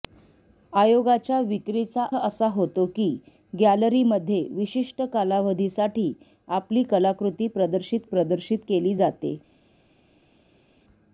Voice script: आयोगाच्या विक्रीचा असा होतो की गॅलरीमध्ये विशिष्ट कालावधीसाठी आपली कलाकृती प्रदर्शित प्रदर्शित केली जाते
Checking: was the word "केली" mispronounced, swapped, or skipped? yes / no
no